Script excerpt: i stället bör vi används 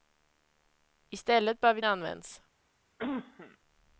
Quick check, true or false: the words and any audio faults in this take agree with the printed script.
false